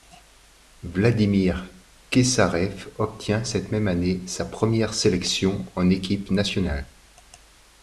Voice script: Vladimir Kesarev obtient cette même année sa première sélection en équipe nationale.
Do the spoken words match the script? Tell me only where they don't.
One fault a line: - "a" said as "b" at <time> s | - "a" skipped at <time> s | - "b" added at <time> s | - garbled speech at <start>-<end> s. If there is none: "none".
none